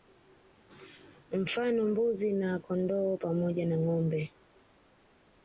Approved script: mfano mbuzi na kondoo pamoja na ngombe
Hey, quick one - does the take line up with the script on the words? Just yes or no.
yes